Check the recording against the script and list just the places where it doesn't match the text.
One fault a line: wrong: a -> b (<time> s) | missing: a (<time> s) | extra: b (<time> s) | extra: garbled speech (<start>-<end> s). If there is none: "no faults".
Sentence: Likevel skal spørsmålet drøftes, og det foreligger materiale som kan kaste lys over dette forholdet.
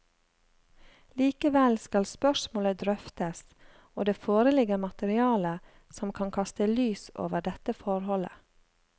no faults